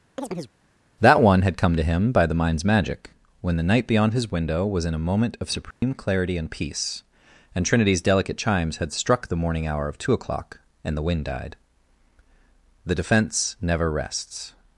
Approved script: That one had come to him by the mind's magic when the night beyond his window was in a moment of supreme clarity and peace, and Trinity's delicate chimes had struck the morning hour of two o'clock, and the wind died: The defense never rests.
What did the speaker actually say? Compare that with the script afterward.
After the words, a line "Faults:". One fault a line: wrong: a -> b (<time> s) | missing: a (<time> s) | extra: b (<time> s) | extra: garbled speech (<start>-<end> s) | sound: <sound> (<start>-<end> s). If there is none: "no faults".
That one had come to him by the mind's magic when the night beyond his window was in a moment of supreme clarity and peace, and Trinity's delicate chimes had struck the morning hour of two o'clock, and the wind died: The defense never rests.
Faults:
sound: chirp (0.2-0.5 s)
sound: dropout (5.7-5.8 s)